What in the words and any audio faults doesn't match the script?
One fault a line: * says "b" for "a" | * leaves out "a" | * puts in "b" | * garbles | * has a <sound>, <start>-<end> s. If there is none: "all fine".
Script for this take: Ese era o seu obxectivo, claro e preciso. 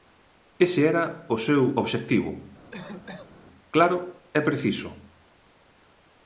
* has a cough, 2.7-3.5 s